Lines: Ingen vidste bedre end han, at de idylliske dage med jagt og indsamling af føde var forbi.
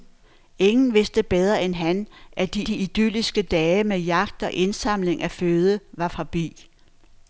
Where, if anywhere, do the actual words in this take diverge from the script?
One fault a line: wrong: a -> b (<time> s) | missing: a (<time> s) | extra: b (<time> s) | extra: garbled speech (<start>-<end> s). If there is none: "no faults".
extra: de (2.7 s)